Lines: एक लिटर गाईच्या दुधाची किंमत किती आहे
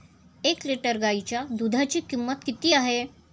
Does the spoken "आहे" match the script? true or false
true